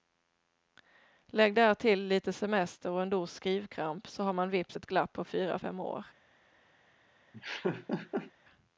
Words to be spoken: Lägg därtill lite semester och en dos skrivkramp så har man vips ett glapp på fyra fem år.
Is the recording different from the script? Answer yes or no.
no